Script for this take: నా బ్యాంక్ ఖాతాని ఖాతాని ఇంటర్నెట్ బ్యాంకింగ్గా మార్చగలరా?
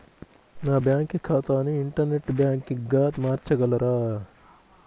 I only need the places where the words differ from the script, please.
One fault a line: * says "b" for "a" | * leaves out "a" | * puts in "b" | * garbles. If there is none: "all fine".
* leaves out "ఖాతాని"